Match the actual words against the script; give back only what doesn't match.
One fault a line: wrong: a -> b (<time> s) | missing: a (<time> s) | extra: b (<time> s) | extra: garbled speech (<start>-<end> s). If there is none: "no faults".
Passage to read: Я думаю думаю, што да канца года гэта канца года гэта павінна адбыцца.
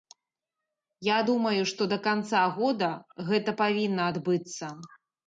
missing: думаю (1.6 s)
missing: канца года гэта (3.6 s)